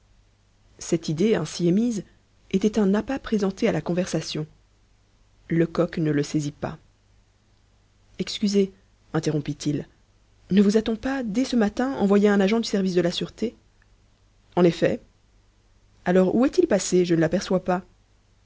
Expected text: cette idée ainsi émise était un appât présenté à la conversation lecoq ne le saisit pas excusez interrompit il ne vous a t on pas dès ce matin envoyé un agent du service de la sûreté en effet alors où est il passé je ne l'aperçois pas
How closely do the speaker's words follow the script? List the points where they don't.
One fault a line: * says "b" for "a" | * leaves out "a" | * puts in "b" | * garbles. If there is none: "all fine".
all fine